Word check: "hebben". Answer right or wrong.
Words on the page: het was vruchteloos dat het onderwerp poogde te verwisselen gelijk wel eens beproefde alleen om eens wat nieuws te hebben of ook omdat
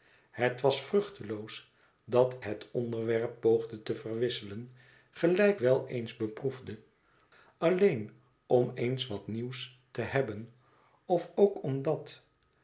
right